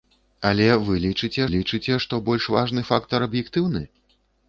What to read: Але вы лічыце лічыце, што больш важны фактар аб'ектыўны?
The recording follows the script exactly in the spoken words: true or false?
true